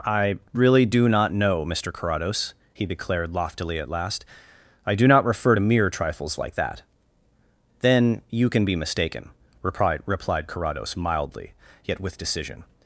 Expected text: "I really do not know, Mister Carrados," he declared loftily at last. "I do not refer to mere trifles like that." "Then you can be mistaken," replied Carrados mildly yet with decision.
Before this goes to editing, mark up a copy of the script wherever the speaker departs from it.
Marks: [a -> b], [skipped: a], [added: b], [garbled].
"I really do not know, Mister Carrados," he declared loftily at last. "I do not refer to mere trifles like that." "Then you can be mistaken," replied [added: replied] Carrados mildly yet with decision.